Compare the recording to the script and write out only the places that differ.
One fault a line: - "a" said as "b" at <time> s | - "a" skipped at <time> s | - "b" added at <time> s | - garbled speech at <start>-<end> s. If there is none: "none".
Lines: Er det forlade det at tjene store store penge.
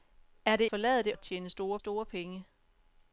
none